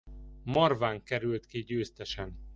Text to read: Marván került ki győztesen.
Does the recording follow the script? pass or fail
pass